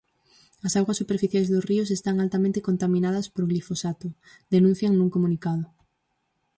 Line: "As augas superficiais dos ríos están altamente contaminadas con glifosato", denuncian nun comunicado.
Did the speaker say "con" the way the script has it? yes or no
no